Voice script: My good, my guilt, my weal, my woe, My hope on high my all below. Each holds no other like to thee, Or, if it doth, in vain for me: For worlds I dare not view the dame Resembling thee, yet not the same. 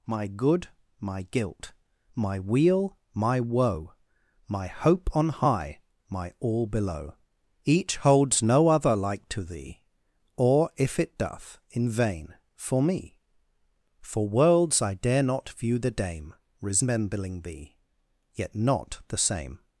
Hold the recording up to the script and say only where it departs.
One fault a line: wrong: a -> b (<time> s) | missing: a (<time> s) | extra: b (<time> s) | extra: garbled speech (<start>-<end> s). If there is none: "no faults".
no faults